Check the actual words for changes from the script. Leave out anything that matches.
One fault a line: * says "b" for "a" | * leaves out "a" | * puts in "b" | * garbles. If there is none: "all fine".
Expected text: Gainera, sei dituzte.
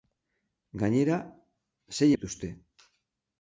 all fine